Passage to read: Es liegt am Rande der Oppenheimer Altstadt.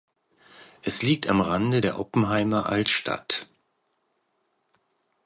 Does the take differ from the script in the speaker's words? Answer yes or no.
no